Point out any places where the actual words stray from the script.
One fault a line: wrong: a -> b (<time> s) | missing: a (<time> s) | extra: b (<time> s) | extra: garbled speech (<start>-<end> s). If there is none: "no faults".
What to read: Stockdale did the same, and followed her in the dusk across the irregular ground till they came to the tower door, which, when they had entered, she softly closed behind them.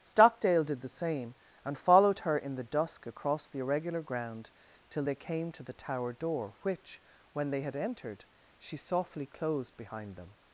no faults